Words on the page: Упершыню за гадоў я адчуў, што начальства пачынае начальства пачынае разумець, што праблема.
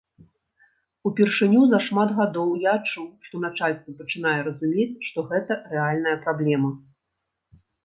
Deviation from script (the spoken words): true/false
true